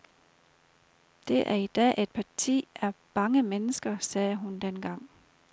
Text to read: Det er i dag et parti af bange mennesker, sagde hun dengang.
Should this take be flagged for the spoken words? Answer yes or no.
no